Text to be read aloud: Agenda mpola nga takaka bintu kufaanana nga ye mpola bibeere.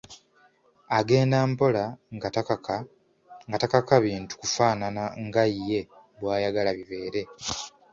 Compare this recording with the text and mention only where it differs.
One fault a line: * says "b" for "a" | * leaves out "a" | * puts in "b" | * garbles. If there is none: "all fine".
* says "bw'ayagala" for "mpola"